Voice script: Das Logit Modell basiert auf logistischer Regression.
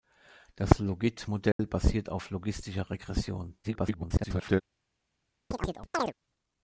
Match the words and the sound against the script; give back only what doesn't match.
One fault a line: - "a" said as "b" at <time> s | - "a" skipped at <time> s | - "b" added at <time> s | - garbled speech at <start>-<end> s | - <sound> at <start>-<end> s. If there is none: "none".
- dropout at 1.5-1.6 s
- garbled speech at 3.6-4.6 s
- chirp at 5.5-6.1 s